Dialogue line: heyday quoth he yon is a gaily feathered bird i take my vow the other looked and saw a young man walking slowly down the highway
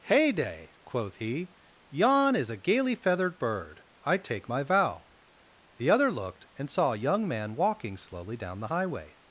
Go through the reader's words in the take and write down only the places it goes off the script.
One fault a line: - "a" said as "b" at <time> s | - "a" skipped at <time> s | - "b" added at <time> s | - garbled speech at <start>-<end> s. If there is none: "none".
none